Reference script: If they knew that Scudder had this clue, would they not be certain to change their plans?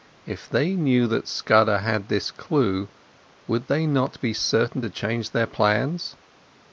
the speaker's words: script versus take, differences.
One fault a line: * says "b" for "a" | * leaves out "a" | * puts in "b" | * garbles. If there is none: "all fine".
all fine